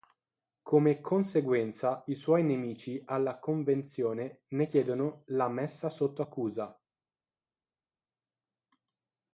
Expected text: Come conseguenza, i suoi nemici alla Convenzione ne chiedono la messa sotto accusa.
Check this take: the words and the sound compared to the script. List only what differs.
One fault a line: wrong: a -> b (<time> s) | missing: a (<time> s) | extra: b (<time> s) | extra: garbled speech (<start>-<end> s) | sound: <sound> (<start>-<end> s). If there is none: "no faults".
no faults